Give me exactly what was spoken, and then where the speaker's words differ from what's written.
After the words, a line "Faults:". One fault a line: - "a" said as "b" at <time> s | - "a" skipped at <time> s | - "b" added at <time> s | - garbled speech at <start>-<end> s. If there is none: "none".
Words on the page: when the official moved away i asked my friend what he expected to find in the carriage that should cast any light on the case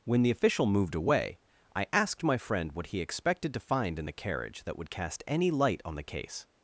when the official moved away i asked my friend what he expected to find in the carriage that would cast any light on the case
Faults:
- "should" said as "would" at 4.8 s